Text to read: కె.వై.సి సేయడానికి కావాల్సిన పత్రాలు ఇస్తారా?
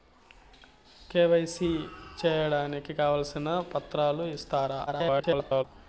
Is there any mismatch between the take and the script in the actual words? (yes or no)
yes